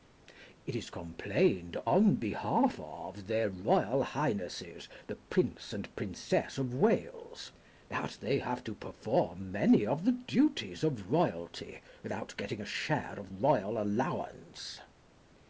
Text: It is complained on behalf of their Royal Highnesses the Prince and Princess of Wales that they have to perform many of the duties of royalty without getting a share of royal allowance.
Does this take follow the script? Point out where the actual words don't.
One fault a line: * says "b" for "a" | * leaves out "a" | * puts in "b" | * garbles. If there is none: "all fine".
all fine